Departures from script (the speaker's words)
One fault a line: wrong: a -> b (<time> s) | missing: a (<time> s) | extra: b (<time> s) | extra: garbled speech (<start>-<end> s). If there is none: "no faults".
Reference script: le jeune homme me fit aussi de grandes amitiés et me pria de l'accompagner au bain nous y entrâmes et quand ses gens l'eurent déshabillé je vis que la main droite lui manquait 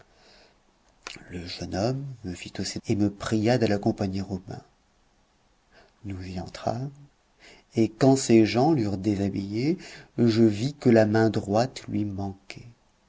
missing: de grandes amitiés (2.8 s)